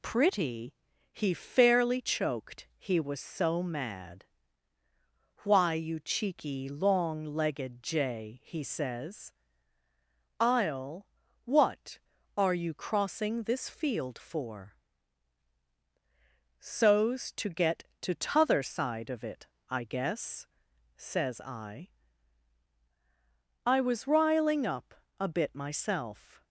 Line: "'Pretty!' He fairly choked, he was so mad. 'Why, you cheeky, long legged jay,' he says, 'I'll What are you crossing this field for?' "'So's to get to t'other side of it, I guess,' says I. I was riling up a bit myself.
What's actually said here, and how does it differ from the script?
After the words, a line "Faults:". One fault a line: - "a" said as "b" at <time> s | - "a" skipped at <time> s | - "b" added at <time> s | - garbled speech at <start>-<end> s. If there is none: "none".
"'Pretty!' He fairly choked, he was so mad. 'Why, you cheeky, long legged jay,' he says, 'I'll What are you crossing this field for?' "'So's to get to t'other side of it, I guess,' says I. I was riling up a bit myself.
Faults:
none